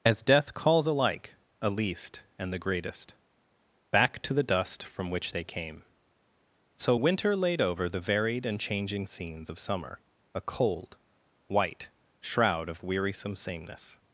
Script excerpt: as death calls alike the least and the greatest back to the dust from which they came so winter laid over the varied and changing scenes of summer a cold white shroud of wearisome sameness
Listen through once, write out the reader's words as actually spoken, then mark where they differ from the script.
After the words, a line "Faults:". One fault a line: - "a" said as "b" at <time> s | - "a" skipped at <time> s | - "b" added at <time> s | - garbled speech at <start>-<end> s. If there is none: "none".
as death calls alike a least and the greatest back to the dust from which they came so winter laid over the varied and changing scenes of summer a cold white shroud of wearisome sameness
Faults:
- "the" said as "a" at 1.6 s